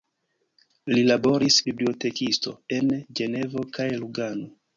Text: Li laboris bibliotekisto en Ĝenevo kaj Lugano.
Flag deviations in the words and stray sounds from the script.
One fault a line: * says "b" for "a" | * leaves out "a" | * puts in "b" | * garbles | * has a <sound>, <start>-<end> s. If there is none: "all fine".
all fine